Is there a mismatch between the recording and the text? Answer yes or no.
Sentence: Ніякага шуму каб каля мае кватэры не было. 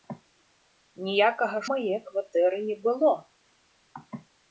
yes